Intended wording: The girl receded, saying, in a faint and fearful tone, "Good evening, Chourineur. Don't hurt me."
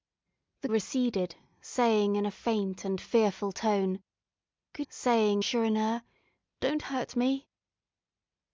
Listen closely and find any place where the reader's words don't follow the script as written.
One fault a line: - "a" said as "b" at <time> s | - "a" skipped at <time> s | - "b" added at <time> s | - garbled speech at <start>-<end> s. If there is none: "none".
- "girl" skipped at 0.7 s
- "evening" said as "saying" at 4.9 s